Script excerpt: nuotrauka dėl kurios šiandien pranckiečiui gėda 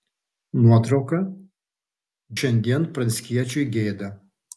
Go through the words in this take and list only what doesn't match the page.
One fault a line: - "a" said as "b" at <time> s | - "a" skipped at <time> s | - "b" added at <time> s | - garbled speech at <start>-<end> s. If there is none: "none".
- "dėl kurios" skipped at 1.2 s